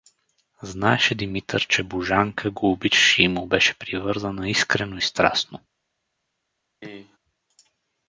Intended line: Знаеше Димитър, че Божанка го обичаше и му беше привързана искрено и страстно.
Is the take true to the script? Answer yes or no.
yes